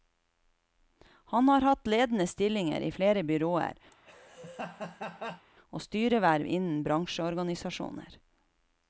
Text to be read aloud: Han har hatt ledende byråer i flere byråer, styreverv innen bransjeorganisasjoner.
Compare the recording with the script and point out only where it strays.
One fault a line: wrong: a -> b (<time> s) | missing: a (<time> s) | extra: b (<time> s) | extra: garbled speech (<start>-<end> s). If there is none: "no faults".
wrong: byråer -> stillinger (2.3 s)
extra: og (5.7 s)